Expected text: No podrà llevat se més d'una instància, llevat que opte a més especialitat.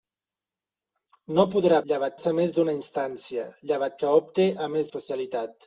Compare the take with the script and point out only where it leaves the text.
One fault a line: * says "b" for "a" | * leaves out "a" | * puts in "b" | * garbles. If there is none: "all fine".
all fine